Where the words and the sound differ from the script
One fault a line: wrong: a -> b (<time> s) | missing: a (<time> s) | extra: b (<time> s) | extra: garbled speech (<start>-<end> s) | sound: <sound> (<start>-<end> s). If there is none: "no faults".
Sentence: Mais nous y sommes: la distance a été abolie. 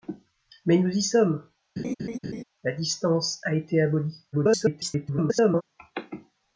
sound: laugh (1.8-2.4 s)
extra: garbled speech (4.3-5.6 s)